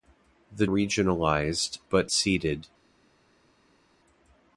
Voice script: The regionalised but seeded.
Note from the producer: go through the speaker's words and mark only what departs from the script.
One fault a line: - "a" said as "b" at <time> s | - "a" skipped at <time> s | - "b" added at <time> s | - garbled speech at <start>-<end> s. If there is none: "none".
none